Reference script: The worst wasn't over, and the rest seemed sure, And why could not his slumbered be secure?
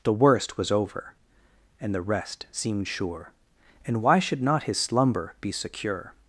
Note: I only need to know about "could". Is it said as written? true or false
false